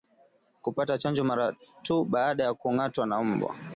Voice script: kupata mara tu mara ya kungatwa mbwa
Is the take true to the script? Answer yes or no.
no